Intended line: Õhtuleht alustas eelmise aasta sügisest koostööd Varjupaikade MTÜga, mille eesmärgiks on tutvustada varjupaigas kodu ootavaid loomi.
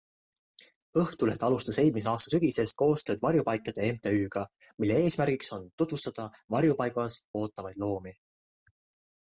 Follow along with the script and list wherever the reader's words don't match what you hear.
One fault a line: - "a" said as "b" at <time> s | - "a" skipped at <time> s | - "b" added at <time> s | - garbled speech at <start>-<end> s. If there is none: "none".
- "kodu" skipped at 7.2 s